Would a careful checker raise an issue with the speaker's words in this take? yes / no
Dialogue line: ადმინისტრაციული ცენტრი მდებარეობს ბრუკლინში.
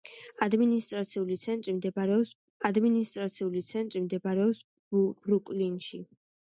yes